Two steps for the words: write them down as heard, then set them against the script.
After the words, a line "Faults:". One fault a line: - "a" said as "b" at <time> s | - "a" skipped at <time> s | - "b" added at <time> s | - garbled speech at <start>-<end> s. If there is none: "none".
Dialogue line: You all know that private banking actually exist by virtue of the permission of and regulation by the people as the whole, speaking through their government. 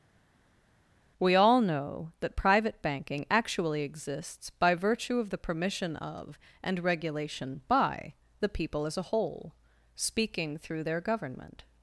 We all know that private banking actually exists by virtue of the permission of and regulation by the people as a whole, speaking through their government.
Faults:
- "You" said as "We" at 1.2 s
- "exist" said as "exists" at 3.8 s
- "the" said as "a" at 9.0 s